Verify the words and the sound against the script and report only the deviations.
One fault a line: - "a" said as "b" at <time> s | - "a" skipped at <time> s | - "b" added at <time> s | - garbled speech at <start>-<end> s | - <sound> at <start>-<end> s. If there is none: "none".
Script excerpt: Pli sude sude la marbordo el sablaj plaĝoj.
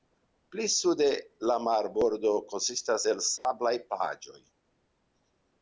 - "sude" skipped at 1.1 s
- "konsistas" added at 2.5 s
- dropout at 3.4-3.4 s